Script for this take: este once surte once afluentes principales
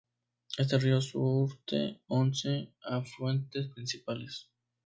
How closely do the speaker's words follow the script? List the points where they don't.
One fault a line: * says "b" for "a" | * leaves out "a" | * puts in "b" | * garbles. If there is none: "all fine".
* says "río" for "once"